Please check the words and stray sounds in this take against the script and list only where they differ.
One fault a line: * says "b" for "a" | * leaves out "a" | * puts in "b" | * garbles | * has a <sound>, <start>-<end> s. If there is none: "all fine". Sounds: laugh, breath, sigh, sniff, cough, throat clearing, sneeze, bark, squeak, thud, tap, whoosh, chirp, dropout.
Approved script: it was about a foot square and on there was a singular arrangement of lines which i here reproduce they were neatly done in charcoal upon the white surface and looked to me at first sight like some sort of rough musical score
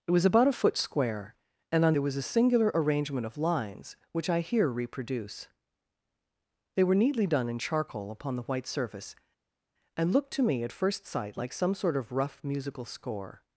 all fine